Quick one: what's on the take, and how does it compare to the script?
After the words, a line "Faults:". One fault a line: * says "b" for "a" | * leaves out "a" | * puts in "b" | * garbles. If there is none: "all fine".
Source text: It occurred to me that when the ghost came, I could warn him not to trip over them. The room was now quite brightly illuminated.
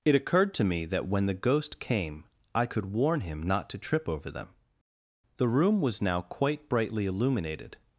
It occurred to me that when the ghost came, I could warn him not to trip over them. The room was now quite brightly illuminated.
Faults:
all fine